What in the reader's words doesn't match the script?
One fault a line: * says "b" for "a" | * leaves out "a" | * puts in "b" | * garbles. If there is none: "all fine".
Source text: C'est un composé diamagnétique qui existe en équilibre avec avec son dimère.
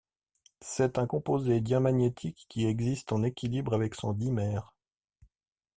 * leaves out "avec"